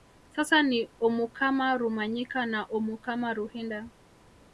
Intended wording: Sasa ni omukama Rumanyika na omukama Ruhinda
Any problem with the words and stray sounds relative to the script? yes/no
no